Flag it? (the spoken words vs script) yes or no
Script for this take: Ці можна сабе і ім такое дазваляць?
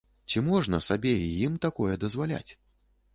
no